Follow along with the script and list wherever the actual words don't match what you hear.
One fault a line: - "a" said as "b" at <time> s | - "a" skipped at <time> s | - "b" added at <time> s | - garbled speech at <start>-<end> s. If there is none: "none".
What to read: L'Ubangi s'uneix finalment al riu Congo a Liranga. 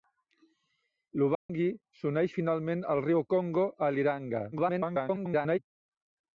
- garbled speech at 4.5-5.6 s